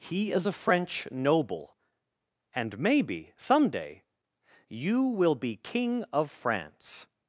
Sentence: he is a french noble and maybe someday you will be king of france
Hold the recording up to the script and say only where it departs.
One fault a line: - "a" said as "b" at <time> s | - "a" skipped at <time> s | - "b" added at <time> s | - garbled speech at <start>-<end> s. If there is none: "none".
none